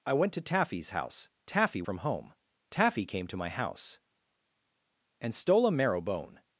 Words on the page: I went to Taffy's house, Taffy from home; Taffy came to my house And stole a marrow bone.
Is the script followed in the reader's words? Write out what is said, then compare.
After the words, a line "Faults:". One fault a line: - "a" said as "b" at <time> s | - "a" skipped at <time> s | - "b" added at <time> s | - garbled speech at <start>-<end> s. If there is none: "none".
I went to Taffy's house, Taffy from home; Taffy came to my house And stole a marrow bone.
Faults:
none